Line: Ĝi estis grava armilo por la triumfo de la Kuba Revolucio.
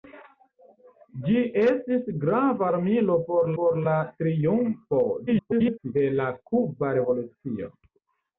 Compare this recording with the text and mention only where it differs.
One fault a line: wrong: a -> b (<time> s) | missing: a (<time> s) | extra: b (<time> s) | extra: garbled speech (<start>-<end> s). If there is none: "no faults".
extra: por (3.6 s)
extra: garbled speech (5.3-5.9 s)